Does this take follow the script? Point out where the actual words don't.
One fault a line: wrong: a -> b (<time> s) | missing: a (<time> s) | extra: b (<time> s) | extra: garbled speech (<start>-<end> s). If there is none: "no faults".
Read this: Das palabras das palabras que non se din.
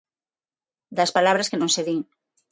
missing: das palabras (1.5 s)